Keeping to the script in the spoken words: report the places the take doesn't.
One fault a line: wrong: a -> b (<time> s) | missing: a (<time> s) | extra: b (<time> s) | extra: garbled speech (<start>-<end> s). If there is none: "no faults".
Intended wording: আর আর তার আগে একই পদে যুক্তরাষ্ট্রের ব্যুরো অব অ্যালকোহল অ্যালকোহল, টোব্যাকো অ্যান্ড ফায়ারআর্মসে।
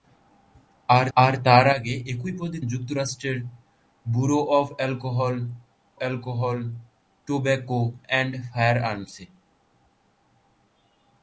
no faults